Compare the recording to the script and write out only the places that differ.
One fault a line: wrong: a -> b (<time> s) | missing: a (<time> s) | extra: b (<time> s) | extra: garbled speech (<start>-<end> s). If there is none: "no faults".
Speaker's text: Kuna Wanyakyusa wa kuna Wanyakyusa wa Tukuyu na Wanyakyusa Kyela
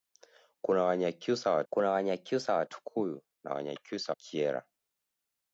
no faults